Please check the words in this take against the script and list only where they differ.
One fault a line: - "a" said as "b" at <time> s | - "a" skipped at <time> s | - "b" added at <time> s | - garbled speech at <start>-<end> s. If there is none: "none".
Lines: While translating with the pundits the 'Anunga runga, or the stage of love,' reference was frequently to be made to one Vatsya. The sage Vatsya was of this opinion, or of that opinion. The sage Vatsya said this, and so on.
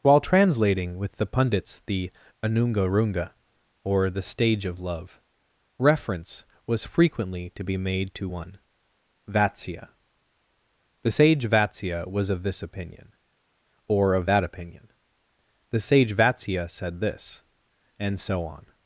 none